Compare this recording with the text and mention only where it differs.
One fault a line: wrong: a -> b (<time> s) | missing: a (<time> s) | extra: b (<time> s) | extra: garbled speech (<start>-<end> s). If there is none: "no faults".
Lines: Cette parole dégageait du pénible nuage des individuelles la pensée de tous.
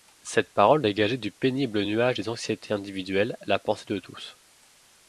extra: anxiétés (2.3 s)